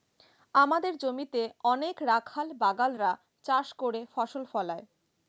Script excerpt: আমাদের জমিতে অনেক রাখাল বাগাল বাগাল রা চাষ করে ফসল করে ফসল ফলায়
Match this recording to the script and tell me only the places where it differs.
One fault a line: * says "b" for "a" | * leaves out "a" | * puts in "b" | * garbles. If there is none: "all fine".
* leaves out "বাগাল"
* leaves out "করে ফসল"